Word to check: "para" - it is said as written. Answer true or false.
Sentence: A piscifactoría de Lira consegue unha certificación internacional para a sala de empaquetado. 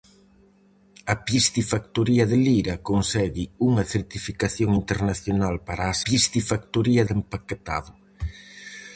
true